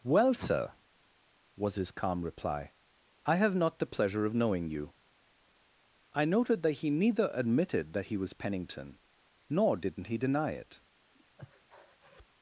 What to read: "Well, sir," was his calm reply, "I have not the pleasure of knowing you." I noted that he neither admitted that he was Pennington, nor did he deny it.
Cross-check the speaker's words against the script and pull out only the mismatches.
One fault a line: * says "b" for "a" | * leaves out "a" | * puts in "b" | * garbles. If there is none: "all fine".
* says "didn't" for "did"